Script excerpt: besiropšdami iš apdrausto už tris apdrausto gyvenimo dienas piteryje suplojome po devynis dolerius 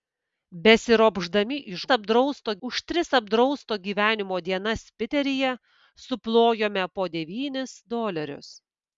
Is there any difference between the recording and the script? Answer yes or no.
no